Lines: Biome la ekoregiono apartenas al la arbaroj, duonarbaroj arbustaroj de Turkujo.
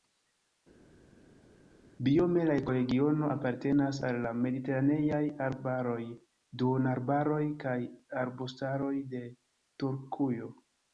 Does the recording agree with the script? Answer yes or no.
no